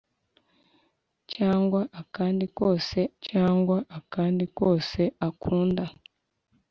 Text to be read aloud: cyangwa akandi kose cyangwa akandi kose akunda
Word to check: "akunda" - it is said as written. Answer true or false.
true